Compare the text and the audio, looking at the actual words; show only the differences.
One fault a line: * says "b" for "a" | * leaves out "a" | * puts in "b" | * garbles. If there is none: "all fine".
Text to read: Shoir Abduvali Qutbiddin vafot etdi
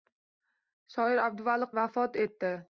* leaves out "Qutbiddin"